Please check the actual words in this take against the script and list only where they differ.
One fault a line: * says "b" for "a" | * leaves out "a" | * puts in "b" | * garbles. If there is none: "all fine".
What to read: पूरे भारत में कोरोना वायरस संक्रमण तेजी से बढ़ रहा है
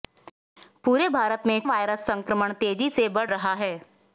* leaves out "कोरोना"